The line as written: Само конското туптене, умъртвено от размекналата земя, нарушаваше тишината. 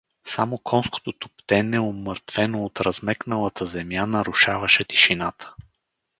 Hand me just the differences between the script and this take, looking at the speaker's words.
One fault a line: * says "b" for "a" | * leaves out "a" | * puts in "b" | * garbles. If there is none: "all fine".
all fine